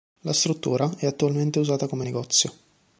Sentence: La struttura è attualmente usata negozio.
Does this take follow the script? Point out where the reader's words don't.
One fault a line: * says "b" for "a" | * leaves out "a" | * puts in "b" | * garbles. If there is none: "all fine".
* puts in "come"